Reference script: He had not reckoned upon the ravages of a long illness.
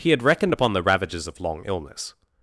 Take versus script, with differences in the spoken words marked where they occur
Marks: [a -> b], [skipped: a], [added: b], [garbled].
He had [skipped: not] reckoned upon the ravages of [skipped: a] long illness.